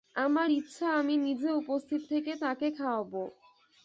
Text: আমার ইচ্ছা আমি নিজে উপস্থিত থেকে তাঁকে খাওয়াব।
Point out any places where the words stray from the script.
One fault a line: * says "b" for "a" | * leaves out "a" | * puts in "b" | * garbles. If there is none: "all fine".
all fine